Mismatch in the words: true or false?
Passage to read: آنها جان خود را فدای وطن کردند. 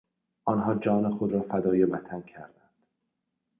false